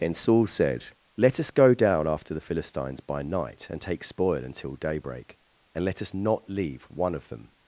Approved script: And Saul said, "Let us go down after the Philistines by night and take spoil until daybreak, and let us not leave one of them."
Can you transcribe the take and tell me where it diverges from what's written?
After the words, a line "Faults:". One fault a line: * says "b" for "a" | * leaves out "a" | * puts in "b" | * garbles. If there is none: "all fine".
And Saul said, "Let us go down after the Philistines by night and take spoil until daybreak, and let us not leave one of them."
Faults:
all fine